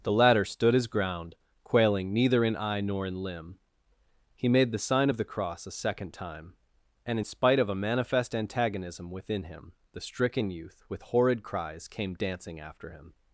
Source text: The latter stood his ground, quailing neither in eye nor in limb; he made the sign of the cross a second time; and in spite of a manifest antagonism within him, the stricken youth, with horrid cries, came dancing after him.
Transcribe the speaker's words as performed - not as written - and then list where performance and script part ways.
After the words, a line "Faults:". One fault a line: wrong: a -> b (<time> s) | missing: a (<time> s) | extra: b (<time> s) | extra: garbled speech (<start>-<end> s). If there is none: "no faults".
The latter stood his ground, quailing neither in eye nor in limb; he made the sign of the cross a second time; and in spite of a manifest antagonism within him, the stricken youth, with horrid cries, came dancing after him.
Faults:
no faults